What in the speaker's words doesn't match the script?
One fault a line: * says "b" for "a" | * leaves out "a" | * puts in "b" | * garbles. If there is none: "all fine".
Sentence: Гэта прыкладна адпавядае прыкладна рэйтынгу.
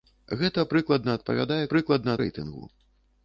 all fine